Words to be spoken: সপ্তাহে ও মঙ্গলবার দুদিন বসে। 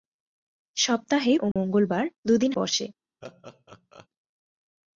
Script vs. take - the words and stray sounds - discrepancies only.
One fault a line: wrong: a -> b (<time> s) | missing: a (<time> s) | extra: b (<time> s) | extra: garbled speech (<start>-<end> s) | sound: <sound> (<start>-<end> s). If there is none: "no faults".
sound: dropout (1.5-1.6 s)
sound: laugh (3.2-4.1 s)